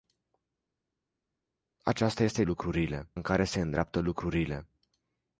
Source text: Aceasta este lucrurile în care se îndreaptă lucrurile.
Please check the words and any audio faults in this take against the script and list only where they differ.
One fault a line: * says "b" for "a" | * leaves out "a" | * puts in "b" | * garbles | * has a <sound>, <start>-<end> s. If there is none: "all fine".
all fine